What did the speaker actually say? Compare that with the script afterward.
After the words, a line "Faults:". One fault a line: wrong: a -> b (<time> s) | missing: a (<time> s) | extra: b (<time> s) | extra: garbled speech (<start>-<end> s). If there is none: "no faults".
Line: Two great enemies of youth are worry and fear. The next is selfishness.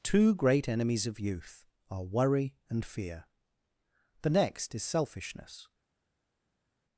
Two great enemies of youth are worry and fear. The next is selfishness.
Faults:
no faults